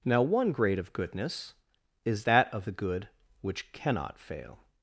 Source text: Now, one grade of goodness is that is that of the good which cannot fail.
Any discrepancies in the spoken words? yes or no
yes